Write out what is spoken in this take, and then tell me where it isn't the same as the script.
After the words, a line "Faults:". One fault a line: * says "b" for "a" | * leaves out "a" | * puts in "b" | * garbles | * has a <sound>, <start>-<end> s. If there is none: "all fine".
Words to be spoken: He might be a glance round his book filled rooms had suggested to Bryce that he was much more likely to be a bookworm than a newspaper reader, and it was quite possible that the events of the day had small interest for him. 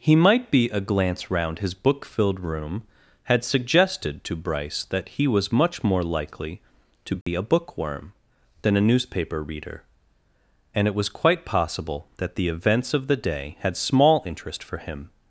He might be a glance round his book filled room had suggested to Bryce that he was much more likely to be a bookworm than a newspaper reader, and it was quite possible that the events of the day had small interest for him.
Faults:
* says "room" for "rooms"
* has a dropout, 7.2-7.3 s